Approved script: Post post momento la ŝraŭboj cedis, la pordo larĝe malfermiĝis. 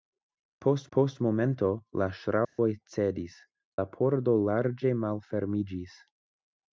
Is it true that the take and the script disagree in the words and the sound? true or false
true